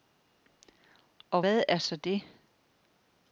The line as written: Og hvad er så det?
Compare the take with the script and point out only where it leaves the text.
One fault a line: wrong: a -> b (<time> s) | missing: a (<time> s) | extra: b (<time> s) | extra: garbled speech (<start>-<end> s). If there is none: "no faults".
no faults